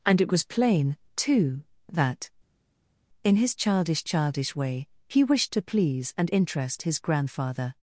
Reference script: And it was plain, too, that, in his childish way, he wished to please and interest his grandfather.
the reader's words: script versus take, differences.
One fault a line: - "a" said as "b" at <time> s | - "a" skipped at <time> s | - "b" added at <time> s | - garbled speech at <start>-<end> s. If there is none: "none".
- "childish" added at 4.0 s